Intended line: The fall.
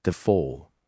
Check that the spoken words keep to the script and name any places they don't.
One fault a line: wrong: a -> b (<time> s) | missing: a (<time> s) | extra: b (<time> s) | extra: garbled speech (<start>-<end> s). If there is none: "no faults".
no faults